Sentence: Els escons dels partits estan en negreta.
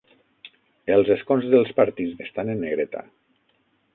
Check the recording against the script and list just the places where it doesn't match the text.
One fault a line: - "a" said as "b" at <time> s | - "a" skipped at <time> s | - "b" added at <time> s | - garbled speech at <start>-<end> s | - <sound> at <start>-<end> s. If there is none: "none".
none